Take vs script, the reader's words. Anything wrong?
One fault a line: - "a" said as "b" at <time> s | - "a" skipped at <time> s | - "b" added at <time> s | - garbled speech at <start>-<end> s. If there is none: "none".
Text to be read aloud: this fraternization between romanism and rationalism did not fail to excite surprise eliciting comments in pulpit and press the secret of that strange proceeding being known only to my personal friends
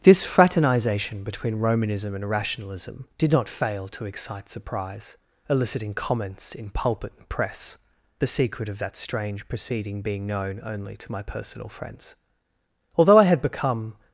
- "although i had become" added at 12.9 s